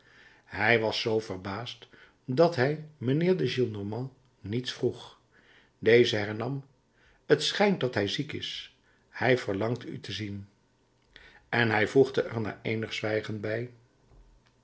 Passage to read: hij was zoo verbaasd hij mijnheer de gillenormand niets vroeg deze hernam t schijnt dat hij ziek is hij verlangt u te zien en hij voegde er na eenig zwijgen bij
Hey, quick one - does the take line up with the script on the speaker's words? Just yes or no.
no